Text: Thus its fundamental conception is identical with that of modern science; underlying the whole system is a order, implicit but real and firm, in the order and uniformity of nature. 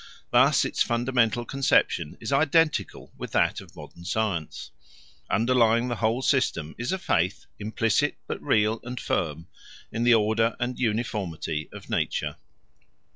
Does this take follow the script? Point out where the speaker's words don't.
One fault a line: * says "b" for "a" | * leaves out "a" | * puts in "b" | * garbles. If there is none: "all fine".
* says "faith" for "order"